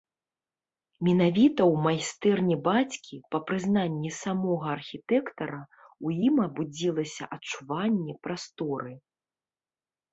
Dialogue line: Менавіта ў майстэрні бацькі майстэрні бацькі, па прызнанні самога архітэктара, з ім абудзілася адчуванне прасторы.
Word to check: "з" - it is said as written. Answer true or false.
false